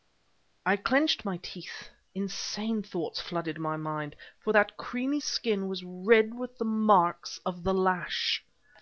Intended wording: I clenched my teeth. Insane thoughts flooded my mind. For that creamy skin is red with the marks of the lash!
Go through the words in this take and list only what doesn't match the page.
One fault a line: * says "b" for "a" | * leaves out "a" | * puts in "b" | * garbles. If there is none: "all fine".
* says "was" for "is"